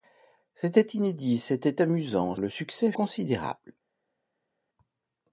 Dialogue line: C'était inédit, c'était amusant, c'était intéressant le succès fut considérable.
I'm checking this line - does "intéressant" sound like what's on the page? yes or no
no